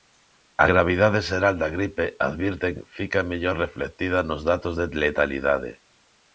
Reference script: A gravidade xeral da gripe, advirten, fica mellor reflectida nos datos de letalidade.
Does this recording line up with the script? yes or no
yes